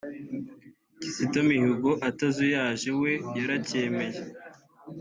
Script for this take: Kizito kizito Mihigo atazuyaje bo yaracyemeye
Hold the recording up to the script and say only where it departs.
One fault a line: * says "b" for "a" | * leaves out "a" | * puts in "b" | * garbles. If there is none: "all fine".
* leaves out "kizito"
* says "we" for "bo"